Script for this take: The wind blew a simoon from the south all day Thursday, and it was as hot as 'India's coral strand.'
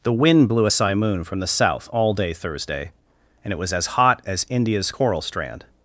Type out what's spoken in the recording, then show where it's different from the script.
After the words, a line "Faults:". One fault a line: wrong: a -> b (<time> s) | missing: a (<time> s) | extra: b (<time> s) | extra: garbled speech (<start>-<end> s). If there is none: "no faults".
The wind blew a simoon from the south all day Thursday, and it was as hot as 'India's coral strand.'
Faults:
no faults